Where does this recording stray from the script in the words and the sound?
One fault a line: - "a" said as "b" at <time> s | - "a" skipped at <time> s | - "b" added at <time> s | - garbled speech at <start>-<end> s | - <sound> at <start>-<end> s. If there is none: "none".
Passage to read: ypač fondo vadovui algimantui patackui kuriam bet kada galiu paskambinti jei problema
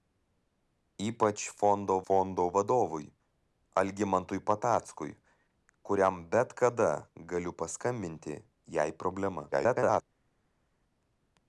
- "fondo" added at 2.1 s
- garbled speech at 9.5-10.0 s